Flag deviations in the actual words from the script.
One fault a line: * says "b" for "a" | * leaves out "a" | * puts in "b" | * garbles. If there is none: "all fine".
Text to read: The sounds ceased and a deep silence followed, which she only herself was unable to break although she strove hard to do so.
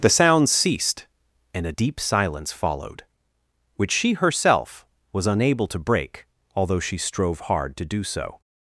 * leaves out "only"